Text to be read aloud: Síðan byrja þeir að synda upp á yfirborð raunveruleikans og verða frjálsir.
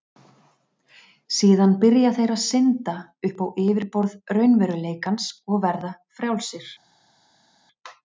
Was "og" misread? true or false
false